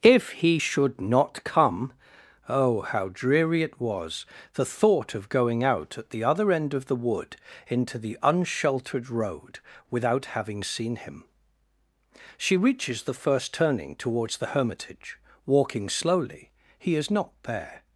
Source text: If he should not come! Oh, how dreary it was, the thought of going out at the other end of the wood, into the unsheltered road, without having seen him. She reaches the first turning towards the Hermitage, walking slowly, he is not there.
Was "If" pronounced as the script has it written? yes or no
yes